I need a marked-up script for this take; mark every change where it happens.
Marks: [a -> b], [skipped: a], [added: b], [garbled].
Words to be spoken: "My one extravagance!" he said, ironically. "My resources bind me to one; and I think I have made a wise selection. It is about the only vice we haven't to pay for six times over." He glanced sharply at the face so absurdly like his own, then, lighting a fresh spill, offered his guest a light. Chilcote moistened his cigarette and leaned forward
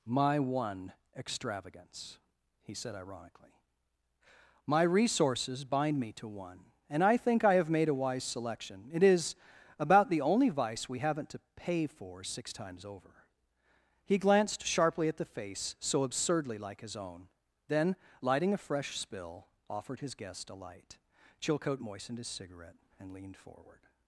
"My one extravagance!" he said, ironically. "My resources bind me to one; and I think I have made a wise selection. It is about the only vice we haven't to pay for six times over." He glanced sharply at the face so absurdly like his own, then, lighting a fresh spill, offered his guest a light. Chilcote moistened his cigarette and leaned forward